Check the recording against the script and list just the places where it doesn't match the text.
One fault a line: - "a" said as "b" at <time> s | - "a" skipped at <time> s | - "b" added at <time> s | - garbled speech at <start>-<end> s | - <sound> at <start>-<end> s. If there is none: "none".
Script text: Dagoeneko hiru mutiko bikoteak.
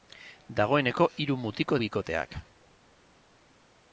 none